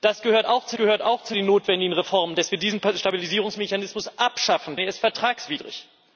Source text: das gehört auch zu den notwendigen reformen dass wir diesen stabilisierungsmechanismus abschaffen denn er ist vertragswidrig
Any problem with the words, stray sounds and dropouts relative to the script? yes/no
yes